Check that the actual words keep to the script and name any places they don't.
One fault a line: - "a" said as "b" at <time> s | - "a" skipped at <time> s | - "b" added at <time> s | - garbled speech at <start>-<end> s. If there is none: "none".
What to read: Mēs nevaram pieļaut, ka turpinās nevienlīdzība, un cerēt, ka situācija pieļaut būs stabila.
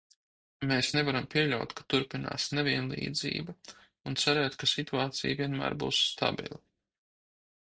- "pieļaut" said as "vienmēr" at 5.4 s